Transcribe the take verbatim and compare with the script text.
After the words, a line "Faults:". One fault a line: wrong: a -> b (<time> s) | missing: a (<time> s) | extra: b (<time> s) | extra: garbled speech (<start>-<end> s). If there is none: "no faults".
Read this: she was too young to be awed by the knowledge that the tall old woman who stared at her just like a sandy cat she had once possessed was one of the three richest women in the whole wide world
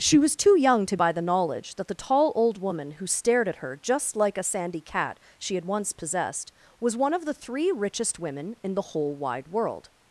she was too young to by the knowledge that the tall old woman who stared at her just like a sandy cat she had once possessed was one of the three richest women in the whole wide world
Faults:
missing: be awed (1.0 s)